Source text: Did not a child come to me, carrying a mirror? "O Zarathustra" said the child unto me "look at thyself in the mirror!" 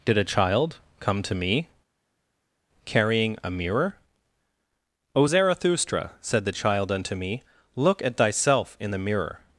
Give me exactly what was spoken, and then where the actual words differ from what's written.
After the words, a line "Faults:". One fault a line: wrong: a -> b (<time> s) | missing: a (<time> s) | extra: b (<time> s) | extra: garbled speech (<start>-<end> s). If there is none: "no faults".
Did a child come to me, carrying a mirror? "O Zarathustra" said the child unto me "look at thyself in the mirror!"
Faults:
missing: not (0.2 s)